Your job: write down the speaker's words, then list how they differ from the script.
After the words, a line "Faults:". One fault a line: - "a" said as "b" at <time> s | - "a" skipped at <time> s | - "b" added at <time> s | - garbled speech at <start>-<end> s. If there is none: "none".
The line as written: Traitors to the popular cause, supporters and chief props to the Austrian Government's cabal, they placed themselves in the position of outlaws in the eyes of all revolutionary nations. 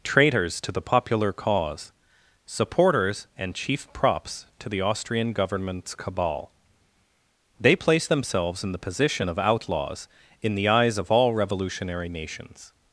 Traitors to the popular cause, supporters and chief props to the Austrian Government's cabal, they placed themselves in the position of outlaws in the eyes of all revolutionary nations.
Faults:
none